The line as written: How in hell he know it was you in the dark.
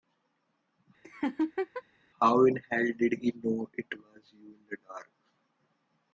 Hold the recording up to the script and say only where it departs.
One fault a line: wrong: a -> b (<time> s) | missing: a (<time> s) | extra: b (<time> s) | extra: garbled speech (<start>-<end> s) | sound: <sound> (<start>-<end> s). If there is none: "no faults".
sound: laugh (1.0-1.8 s)
extra: did (3.0 s)